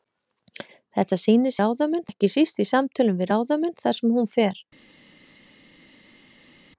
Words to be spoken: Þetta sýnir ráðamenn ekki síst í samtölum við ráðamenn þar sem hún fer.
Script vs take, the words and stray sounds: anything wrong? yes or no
no